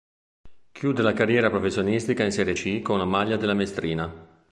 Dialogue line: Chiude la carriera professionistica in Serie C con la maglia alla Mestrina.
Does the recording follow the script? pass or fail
fail